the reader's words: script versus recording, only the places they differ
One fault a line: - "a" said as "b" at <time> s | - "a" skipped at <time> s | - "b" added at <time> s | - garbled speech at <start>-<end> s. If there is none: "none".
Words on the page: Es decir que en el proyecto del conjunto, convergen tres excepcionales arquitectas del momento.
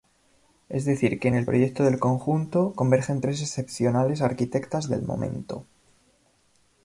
none